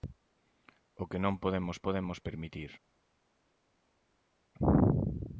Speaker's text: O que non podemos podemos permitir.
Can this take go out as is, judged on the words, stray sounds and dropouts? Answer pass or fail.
pass